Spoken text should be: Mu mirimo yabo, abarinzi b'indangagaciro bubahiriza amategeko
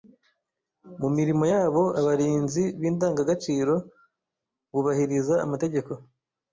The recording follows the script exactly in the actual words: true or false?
true